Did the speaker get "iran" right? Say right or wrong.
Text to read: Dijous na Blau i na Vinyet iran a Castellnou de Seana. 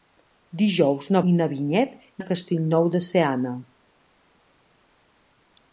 wrong